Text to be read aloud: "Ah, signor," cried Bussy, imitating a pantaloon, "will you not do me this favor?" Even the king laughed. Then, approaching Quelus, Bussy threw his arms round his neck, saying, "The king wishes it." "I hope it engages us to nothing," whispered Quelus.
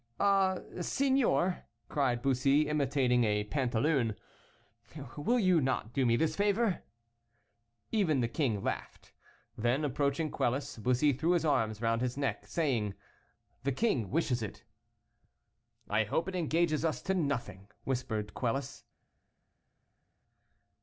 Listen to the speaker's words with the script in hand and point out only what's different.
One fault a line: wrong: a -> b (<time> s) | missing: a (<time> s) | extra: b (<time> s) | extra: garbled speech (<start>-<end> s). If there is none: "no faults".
no faults